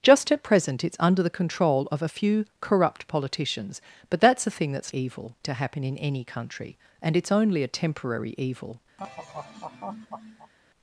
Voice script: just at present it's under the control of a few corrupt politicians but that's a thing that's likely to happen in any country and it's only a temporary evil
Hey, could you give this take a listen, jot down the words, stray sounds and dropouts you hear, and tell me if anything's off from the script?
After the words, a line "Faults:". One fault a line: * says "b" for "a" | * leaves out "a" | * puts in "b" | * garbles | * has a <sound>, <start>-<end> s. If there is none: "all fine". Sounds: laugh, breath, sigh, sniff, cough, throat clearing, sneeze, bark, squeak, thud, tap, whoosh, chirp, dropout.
just at present it's under the control of a few corrupt politicians but that's a thing that's evil to happen in any country and it's only a temporary evil
Faults:
* says "evil" for "likely"
* has a laugh, 9.0-10.5 s